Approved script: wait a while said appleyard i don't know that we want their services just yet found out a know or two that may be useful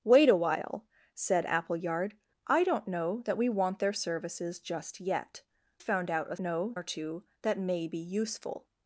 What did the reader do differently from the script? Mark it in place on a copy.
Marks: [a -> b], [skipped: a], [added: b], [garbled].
wait a while said appleyard i don't know that we want their services just yet found out a know or two that may be useful